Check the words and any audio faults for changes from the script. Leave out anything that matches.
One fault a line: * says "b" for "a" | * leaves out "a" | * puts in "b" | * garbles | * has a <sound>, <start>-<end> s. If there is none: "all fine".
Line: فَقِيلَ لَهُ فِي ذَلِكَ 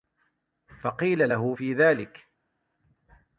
all fine